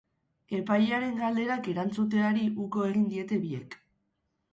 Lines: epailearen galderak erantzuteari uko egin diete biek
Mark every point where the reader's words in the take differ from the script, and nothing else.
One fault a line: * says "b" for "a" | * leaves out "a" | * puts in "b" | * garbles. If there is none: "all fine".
all fine